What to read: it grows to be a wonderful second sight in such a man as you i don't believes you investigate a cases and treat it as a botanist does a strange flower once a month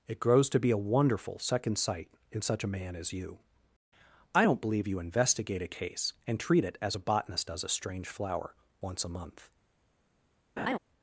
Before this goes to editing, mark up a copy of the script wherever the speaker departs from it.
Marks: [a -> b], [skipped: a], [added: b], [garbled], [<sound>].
it grows to be a wonderful second sight in such a man as you i don't [believes -> believe] you investigate a [cases -> case] and treat it as a botanist does a strange flower once a month [laugh]